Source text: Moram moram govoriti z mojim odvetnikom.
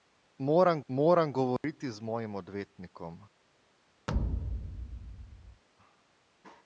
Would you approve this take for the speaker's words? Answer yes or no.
yes